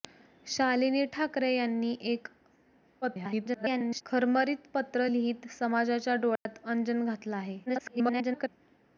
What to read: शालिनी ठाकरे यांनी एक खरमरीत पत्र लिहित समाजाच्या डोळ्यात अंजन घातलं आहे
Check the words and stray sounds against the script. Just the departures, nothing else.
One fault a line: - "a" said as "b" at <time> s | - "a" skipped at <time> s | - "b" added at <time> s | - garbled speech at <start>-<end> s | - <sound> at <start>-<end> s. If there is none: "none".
- garbled speech at 3.0-4.0 s
- dropout at 6.4-6.5 s
- garbled speech at 7.7-8.5 s